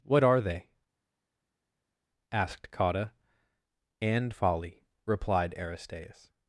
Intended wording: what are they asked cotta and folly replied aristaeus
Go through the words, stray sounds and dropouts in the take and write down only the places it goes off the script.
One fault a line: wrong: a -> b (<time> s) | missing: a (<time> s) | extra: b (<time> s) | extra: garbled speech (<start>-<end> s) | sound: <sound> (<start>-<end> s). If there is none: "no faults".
no faults